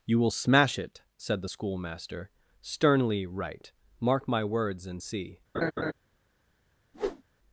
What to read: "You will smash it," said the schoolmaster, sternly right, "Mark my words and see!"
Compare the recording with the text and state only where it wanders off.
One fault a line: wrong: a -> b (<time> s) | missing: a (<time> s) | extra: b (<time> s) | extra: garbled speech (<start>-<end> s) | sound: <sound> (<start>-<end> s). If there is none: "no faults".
sound: laugh (5.5-5.9 s)
sound: whoosh (6.9-7.2 s)